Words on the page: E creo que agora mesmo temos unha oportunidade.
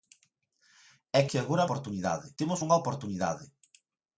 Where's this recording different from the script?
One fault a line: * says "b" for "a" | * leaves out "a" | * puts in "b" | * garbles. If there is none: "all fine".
* leaves out "creo"
* says "oportunidade" for "mesmo"